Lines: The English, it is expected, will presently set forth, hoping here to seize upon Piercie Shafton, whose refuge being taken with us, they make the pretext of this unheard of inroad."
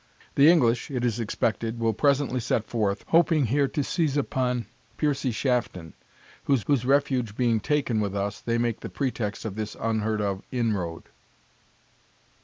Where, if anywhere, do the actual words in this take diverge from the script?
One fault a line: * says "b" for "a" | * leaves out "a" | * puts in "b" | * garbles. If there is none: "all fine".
* puts in "whose"